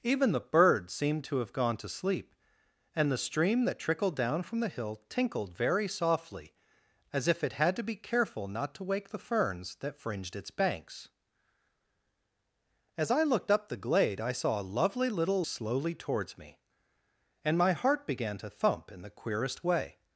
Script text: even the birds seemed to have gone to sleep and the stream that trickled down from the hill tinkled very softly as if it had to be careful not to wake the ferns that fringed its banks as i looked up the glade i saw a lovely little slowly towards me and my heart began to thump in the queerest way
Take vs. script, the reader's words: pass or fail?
pass